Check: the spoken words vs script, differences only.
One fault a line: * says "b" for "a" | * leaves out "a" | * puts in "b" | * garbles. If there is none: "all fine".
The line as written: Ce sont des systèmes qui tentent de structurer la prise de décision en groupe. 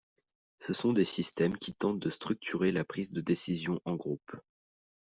all fine